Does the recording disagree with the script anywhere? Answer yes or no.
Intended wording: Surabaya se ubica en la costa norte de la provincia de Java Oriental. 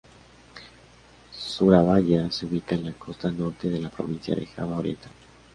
no